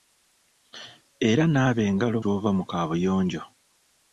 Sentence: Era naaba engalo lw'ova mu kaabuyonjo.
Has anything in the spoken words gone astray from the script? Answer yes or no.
no